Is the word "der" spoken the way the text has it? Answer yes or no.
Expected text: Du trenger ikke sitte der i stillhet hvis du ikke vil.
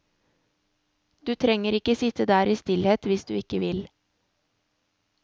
yes